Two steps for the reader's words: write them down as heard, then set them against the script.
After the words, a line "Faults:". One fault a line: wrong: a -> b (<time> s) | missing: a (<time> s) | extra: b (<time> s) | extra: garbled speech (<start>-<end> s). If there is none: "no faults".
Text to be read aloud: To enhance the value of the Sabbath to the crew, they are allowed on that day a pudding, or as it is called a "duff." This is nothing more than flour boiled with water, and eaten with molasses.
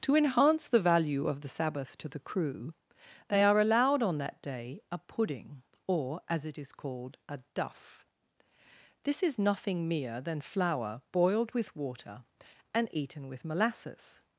To enhance the value of the Sabbath to the crew, they are allowed on that day a pudding, or as it is called a "duff." This is nothing mere than flour boiled with water, and eaten with molasses.
Faults:
wrong: more -> mere (9.9 s)